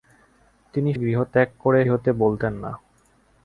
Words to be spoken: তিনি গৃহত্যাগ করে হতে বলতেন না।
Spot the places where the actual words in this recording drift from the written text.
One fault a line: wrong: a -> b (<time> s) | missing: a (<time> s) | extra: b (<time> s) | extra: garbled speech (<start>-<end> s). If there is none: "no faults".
no faults